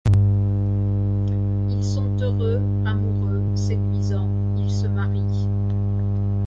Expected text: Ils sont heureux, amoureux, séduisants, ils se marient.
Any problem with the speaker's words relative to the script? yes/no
no